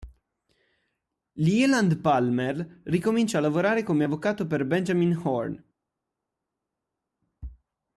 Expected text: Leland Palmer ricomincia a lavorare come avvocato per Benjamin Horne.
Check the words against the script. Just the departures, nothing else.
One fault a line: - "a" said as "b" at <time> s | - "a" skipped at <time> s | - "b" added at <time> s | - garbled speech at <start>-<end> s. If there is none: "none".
none